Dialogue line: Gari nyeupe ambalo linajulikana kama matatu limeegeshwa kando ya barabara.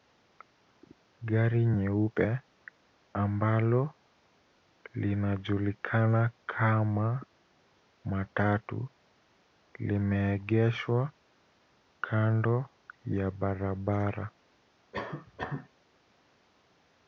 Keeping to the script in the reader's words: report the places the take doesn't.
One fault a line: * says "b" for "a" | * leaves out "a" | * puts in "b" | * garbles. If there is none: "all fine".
all fine